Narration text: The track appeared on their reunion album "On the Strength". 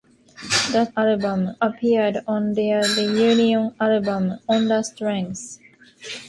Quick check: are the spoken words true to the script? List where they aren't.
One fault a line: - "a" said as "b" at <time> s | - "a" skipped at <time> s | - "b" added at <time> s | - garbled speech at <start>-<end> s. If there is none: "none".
- "track" said as "album" at 1.0 s